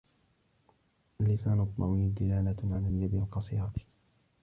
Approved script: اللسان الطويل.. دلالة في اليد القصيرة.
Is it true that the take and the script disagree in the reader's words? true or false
true